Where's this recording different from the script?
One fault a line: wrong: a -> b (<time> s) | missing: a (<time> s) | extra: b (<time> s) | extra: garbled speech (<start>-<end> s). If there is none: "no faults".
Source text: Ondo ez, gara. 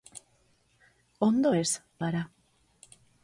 no faults